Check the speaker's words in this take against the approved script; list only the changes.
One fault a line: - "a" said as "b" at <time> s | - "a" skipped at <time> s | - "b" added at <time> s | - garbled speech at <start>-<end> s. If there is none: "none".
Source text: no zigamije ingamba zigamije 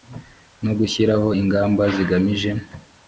- "zigamije" said as "gushyiraho" at 0.8 s